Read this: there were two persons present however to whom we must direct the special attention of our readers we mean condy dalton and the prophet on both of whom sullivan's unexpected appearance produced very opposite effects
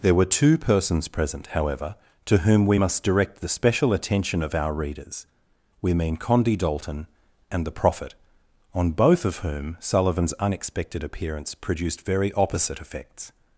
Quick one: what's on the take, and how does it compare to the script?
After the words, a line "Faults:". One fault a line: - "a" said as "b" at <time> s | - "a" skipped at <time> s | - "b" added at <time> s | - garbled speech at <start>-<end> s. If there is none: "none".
there were two persons present however to whom we must direct the special attention of our readers we mean condy dalton and the prophet on both of whom sullivan's unexpected appearance produced very opposite effects
Faults:
none